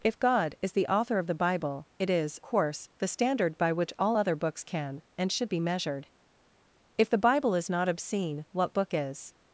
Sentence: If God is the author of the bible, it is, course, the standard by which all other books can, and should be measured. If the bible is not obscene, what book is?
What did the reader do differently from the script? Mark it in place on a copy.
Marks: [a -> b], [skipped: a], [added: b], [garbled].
If God is the author of the bible, it is, course, the standard by which all other books can, and should be measured. If the bible is not obscene, what book is?